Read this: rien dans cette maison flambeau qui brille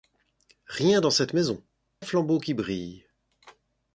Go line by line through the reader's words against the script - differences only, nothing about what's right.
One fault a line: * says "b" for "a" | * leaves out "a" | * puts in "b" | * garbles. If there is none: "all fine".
all fine